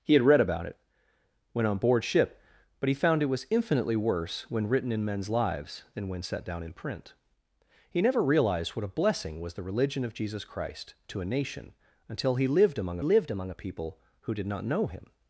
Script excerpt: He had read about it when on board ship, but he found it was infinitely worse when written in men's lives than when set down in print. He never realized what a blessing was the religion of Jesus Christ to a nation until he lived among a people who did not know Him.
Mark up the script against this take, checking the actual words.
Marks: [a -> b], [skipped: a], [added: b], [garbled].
He had read about it when on board ship, but he found it was infinitely worse when written in men's lives than when set down in print. He never realized what a blessing was the religion of Jesus Christ to a nation until he lived among [added: lived among] a people who did not know Him.